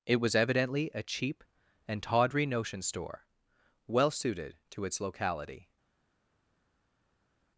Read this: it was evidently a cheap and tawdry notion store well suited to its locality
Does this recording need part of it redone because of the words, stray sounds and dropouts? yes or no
no